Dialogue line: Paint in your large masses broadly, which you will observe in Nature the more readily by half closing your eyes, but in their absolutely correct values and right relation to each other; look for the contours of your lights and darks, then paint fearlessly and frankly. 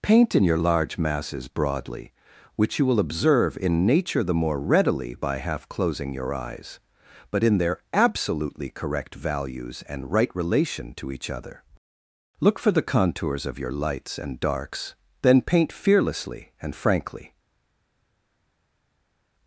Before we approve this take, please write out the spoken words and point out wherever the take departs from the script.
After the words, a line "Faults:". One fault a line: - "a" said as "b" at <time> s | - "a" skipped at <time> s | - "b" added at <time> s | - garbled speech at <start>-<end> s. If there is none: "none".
Paint in your large masses broadly, which you will observe in Nature the more readily by half closing your eyes, but in their absolutely correct values and right relation to each other; look for the contours of your lights and darks, then paint fearlessly and frankly.
Faults:
none